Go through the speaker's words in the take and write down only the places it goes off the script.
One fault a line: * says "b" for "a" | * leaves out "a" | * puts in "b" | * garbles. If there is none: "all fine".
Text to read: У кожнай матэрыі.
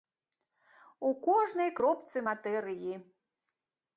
* puts in "кропцы"